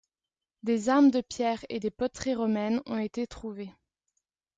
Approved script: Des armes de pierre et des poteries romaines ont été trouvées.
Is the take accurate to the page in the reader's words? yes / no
yes